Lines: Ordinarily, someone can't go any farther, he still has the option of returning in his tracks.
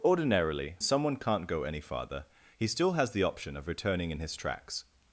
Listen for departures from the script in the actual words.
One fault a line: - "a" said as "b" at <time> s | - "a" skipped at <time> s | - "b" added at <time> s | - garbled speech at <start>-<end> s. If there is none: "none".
none